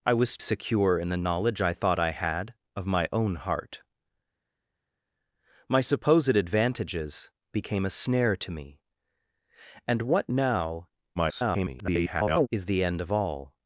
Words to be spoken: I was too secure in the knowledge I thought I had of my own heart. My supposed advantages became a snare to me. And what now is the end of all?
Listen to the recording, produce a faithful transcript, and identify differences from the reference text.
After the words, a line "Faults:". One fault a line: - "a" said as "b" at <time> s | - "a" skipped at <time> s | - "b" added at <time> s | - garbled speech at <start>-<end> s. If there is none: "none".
I was secure in the knowledge I thought I had of my own heart. My supposed advantages became a snare to me. And what now [garbled] is the end of all?
Faults:
- "too" skipped at 0.4 s
- garbled speech at 11.2-12.5 s